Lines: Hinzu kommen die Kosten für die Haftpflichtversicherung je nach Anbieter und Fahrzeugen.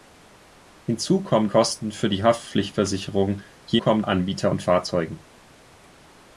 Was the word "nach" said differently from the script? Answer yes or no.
yes